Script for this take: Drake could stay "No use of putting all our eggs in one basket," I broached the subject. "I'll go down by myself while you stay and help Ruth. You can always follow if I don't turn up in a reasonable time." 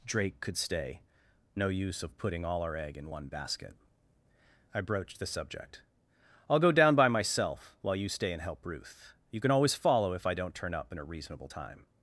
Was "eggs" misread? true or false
true